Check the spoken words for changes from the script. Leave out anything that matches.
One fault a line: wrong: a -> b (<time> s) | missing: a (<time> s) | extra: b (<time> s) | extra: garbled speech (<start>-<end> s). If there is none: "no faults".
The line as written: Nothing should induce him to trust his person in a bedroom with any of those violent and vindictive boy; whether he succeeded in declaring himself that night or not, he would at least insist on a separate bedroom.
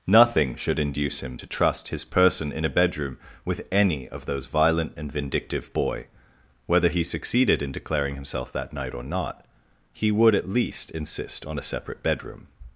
no faults